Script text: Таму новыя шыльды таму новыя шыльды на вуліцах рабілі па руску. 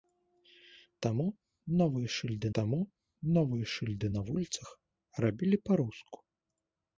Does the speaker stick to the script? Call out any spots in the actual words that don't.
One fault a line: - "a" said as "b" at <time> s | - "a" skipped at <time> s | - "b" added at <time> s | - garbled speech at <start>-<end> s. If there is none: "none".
none